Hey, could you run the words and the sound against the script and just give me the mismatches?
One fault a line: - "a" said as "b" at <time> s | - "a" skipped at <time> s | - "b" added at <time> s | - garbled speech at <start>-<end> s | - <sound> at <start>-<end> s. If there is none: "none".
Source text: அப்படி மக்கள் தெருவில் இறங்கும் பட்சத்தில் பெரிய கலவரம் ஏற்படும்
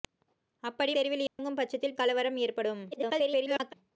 - "மக்கள்" skipped at 0.9 s
- dropout at 1.3-1.4 s
- "பெரிய" skipped at 2.0 s
- garbled speech at 2.9-3.7 s